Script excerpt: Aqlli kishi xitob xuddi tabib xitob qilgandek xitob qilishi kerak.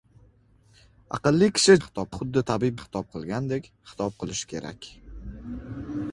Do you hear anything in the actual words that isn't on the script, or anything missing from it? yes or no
no